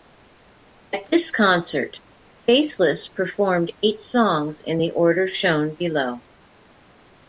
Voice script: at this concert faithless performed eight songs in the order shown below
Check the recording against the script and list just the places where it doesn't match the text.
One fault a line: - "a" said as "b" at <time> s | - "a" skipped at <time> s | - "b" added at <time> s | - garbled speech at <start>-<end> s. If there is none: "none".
none